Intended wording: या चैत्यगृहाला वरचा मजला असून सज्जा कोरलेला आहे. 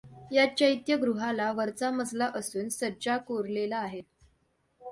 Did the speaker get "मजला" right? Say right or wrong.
right